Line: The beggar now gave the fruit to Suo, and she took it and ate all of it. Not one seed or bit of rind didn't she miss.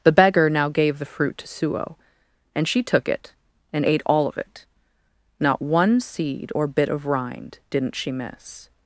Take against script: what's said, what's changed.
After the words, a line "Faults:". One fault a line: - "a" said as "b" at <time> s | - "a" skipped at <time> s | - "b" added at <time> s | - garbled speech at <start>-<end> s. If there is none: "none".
The beggar now gave the fruit to Suo, and she took it and ate all of it. Not one seed or bit of rind didn't she miss.
Faults:
none